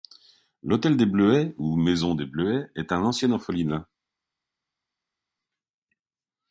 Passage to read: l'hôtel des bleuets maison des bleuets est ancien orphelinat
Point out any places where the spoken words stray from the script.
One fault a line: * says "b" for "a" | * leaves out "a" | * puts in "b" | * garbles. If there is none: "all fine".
* puts in "ou"
* puts in "un"